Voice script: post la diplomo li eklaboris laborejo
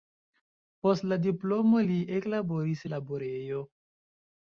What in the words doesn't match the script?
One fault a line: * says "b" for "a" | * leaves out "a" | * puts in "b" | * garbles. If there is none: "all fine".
all fine